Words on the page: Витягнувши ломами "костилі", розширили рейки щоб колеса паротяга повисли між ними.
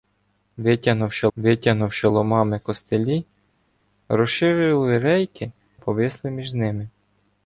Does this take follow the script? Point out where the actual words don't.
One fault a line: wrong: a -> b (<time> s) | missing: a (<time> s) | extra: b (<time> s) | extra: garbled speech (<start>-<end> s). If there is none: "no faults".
extra: витягнувши (1.4 s)
missing: щоб колеса паротяга (5.5 s)